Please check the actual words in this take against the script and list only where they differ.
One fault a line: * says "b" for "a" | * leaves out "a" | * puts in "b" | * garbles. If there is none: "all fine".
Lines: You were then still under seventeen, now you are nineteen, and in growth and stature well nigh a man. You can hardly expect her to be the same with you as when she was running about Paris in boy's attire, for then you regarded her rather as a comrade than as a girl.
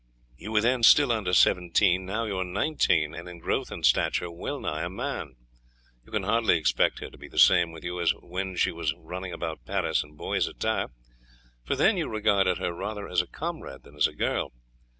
all fine